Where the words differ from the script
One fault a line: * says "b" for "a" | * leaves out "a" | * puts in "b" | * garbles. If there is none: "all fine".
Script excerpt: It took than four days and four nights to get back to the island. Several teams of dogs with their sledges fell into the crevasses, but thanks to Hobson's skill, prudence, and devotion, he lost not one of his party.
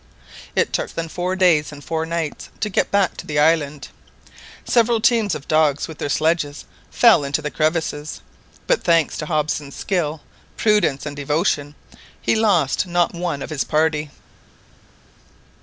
all fine